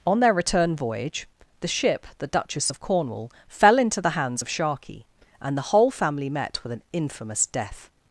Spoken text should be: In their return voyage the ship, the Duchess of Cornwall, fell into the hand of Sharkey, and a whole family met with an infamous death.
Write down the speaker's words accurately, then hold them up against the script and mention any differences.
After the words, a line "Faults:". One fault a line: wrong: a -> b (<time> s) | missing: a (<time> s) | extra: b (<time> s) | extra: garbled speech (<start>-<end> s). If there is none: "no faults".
On their return voyage the ship, the Duchess of Cornwall, fell into the hands of Sharkey, and the whole family met with an infamous death.
Faults:
wrong: In -> On (0.1 s)
wrong: hand -> hands (4.1 s)
wrong: a -> the (5.6 s)